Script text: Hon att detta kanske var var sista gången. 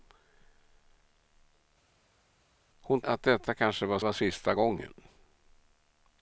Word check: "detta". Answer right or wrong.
right